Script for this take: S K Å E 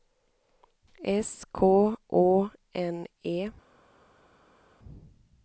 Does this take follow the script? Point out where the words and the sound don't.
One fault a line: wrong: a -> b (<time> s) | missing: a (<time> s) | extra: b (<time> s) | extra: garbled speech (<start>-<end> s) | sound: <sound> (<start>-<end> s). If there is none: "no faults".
extra: N (2.7 s)